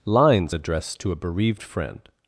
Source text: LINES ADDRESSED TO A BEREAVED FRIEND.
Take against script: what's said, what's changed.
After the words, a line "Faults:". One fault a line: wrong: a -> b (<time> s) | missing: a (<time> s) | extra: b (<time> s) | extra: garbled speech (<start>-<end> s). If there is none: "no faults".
LINES ADDRESSED TO A BEREAVED FRIEND.
Faults:
no faults